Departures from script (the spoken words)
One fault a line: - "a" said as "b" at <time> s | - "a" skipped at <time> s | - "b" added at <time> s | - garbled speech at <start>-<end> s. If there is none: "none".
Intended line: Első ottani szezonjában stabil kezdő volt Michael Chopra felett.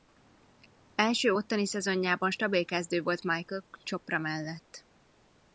- "felett" said as "mellett" at 4.2 s